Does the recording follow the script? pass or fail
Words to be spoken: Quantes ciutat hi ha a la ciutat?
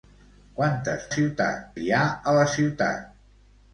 pass